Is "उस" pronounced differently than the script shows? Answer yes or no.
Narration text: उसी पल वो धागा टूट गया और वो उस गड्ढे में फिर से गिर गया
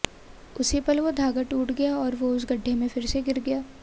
no